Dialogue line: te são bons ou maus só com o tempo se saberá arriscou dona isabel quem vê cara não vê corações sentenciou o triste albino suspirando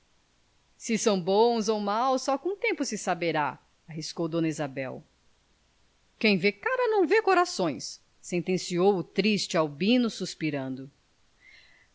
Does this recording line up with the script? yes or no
no